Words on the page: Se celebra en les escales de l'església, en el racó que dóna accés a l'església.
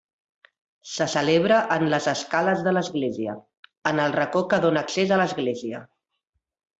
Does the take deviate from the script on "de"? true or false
false